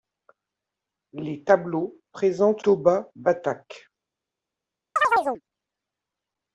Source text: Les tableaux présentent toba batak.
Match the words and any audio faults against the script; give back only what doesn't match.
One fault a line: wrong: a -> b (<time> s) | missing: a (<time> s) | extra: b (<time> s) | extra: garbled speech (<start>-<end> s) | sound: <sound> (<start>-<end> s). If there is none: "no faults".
sound: chirp (5.0-5.4 s)